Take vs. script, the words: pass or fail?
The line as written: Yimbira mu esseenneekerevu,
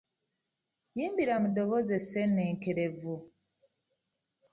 fail